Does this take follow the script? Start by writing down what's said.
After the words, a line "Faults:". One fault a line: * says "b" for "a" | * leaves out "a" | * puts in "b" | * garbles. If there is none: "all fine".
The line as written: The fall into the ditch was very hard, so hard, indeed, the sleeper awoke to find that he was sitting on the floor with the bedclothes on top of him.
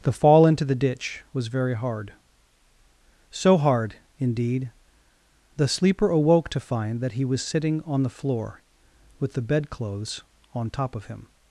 The fall into the ditch was very hard, so hard, indeed, the sleeper awoke to find that he was sitting on the floor with the bedclothes on top of him.
Faults:
all fine